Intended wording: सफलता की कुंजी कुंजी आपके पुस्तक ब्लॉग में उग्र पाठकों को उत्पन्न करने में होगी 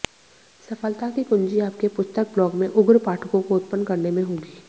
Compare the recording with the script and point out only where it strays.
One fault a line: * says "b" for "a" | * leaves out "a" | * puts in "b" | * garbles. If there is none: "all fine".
* leaves out "कुंजी"